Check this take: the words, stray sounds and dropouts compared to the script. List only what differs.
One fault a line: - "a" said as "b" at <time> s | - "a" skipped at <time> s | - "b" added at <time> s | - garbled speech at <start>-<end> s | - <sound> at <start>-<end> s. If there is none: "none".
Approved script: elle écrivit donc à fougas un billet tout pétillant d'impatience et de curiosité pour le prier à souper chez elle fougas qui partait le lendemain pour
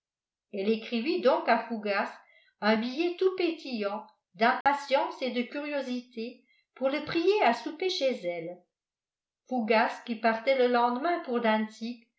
- dropout at 4.6-4.7 s